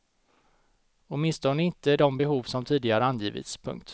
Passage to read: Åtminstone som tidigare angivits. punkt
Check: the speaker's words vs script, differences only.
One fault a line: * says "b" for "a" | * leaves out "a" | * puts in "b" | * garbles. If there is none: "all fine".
* puts in "inte de behov"